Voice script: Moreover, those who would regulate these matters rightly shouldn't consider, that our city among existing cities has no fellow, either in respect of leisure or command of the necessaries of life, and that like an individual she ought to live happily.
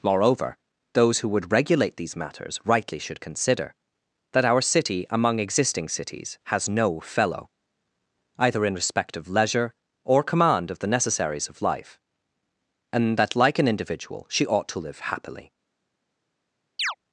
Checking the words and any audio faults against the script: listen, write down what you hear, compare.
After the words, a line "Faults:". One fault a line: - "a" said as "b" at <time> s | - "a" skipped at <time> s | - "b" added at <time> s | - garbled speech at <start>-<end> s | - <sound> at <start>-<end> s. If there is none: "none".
Moreover, those who would regulate these matters rightly should consider, that our city among existing cities has no fellow, either in respect of leisure or command of the necessaries of life, and that like an individual she ought to live happily.
Faults:
- "shouldn't" said as "should" at 3.0 s
- chirp at 16.8-17.0 s